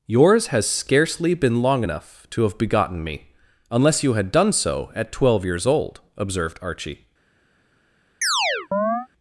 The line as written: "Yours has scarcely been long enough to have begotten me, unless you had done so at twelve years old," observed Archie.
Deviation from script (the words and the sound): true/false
true